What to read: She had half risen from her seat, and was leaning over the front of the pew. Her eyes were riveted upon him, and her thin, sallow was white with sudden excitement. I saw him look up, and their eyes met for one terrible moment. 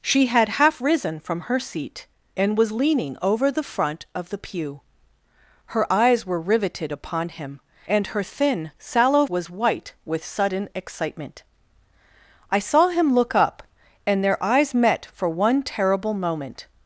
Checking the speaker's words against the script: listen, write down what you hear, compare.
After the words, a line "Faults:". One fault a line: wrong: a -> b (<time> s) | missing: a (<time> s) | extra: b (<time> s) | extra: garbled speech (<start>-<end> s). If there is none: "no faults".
She had half risen from her seat, and was leaning over the front of the pew. Her eyes were riveted upon him, and her thin, sallow was white with sudden excitement. I saw him look up, and their eyes met for one terrible moment.
Faults:
no faults